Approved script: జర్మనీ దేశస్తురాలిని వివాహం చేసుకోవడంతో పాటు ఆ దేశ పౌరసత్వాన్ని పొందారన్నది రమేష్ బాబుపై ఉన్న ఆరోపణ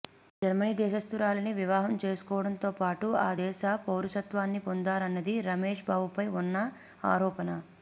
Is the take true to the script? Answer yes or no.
yes